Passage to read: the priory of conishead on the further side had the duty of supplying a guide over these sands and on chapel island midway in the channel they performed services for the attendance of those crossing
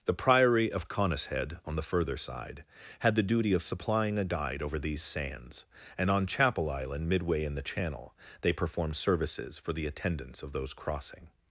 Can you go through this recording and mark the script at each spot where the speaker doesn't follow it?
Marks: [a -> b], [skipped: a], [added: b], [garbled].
the priory of conishead on the further side had the duty of supplying a guide over these sands and on chapel island midway in the channel they performed services for the attendance of those crossing